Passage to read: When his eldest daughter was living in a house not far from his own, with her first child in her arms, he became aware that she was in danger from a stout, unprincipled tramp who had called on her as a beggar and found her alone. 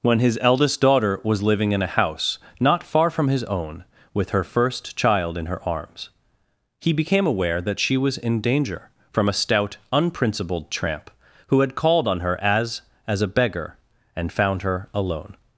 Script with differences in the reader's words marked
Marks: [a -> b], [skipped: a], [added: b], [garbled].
When his eldest daughter was living in a house not far from his own, with her first child in her arms, he became aware that she was in danger from a stout, unprincipled tramp who had called on her as [added: as] a beggar and found her alone.